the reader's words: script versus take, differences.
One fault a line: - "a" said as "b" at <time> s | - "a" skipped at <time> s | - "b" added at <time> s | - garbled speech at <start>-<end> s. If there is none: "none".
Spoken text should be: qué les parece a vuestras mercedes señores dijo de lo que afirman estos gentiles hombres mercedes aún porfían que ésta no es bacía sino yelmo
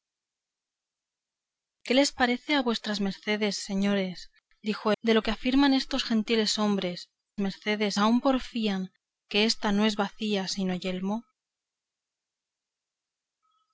none